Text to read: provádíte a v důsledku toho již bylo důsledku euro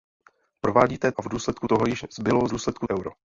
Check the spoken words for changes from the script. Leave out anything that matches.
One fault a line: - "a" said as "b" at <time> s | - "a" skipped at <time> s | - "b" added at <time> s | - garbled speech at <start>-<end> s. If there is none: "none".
none